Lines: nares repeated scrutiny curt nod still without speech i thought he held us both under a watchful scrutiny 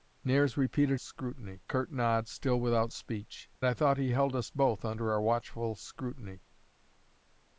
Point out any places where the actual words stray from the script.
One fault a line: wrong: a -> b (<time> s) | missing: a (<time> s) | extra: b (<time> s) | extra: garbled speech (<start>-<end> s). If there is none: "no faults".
no faults